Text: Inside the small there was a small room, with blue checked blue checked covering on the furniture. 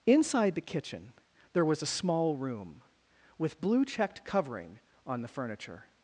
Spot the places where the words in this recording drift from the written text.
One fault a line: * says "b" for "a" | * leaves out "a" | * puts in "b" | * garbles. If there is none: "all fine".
* says "kitchen" for "small"
* leaves out "blue checked"